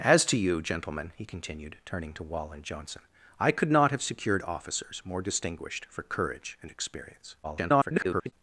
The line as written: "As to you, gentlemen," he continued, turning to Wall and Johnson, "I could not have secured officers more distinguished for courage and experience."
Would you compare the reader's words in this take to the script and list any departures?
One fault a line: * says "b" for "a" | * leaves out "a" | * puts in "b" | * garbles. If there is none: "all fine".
* garbles